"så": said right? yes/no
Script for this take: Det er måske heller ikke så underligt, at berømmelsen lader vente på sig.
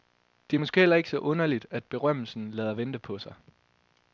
yes